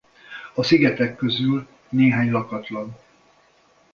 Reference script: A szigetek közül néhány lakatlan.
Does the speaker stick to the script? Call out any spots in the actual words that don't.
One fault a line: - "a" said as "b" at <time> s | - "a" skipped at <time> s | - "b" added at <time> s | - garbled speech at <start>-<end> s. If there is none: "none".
none